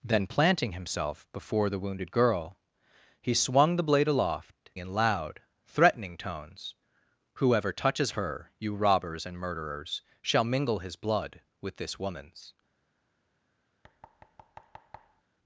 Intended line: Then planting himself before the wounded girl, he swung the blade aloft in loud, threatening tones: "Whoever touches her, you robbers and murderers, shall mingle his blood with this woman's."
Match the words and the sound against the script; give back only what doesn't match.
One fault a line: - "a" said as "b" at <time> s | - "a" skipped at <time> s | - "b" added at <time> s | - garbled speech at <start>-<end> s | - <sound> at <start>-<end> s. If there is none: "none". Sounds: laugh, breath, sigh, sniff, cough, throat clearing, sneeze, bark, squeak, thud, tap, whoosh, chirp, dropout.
- thud at 13.8-15.2 s